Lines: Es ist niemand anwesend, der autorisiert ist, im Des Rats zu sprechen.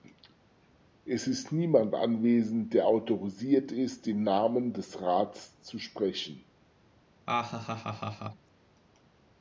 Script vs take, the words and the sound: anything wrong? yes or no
yes